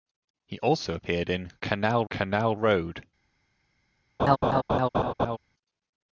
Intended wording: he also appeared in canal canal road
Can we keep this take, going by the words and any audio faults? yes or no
no